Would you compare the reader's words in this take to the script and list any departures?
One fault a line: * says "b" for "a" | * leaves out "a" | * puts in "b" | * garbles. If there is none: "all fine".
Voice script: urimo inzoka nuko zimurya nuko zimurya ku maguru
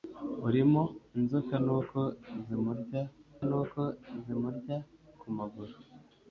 all fine